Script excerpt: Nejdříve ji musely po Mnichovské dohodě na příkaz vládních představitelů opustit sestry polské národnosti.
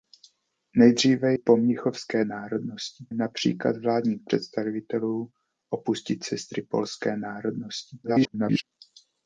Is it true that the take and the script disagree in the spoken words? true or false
true